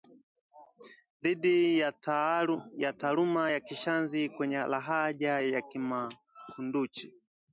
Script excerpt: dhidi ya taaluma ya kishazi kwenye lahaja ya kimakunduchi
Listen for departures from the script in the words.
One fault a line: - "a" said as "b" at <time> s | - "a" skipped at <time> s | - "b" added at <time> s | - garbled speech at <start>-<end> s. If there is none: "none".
none